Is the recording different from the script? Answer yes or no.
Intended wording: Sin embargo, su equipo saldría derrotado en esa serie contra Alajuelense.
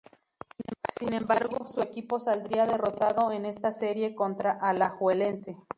yes